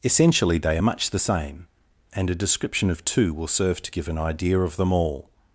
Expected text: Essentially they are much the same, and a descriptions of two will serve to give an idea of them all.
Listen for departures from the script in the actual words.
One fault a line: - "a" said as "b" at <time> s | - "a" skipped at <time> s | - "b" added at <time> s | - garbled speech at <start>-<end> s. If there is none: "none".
- "descriptions" said as "description" at 2.3 s